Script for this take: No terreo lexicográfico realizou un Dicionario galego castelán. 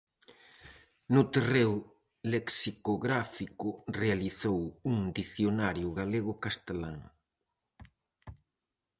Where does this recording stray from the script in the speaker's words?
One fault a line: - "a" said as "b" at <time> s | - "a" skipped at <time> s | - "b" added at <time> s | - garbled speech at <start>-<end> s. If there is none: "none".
none